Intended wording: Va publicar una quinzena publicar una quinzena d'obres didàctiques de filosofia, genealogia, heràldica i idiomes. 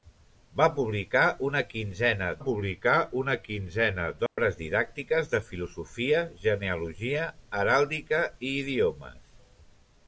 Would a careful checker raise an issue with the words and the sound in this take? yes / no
yes